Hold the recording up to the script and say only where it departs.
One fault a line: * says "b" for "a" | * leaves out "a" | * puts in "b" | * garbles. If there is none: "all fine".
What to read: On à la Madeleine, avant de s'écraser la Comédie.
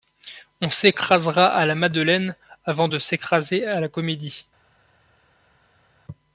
* puts in "s'écrasera"
* puts in "à"